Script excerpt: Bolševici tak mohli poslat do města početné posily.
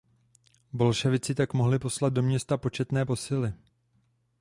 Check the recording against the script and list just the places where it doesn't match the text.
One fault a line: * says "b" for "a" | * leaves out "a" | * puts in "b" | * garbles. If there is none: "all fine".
all fine